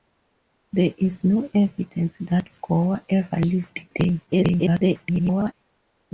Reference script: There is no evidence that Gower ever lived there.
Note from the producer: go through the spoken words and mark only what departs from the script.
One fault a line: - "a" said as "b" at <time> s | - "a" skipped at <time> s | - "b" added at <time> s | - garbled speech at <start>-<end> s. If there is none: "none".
- garbled speech at 4.3-5.5 s